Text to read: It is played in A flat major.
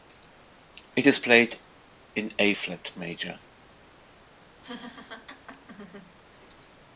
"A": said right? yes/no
yes